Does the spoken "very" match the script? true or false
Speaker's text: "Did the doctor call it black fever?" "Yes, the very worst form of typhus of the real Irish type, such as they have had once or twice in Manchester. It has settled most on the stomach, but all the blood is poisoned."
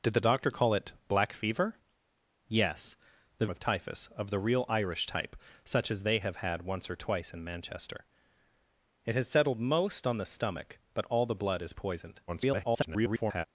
false